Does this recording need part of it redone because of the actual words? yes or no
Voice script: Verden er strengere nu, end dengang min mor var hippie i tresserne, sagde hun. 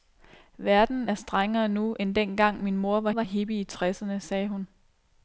yes